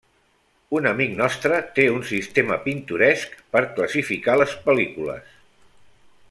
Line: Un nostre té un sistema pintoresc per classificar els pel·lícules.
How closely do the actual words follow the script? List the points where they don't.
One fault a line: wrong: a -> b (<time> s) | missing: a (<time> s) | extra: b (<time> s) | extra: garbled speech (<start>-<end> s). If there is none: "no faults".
extra: amic (0.9 s)
wrong: els -> les (4.4 s)